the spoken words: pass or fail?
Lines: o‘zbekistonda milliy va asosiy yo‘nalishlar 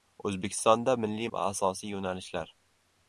pass